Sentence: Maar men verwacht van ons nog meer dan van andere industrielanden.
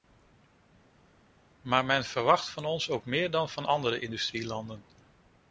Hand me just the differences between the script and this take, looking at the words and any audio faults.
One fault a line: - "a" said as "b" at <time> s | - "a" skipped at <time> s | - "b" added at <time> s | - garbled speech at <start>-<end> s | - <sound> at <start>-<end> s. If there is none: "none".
- "nog" said as "ook" at 2.9 s